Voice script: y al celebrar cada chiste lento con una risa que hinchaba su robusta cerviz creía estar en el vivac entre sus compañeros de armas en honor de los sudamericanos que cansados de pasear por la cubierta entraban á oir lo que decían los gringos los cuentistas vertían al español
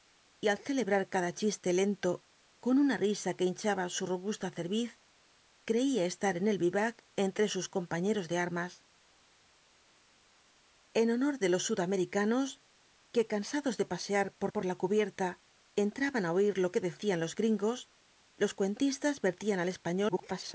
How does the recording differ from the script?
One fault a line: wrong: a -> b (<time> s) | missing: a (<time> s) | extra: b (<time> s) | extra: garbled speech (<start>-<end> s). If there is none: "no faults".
extra: por (14.5 s)
extra: garbled speech (20.1-20.5 s)